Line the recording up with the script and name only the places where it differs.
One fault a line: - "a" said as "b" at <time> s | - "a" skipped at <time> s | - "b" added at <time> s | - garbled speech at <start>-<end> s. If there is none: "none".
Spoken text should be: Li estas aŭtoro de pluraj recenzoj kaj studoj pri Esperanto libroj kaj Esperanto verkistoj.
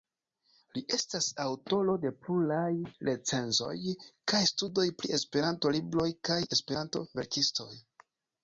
none